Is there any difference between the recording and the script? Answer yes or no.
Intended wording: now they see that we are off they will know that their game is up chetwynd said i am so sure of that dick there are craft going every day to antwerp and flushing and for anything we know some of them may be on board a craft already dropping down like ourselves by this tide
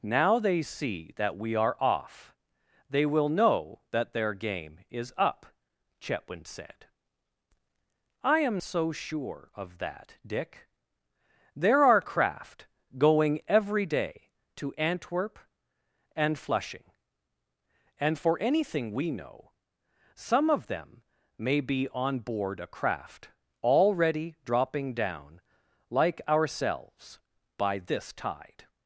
no